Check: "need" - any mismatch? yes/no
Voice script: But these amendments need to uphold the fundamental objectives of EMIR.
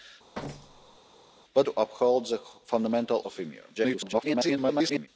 yes